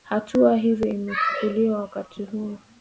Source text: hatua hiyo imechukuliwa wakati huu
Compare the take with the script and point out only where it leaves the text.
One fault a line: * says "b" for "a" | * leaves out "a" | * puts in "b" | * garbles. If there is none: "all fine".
all fine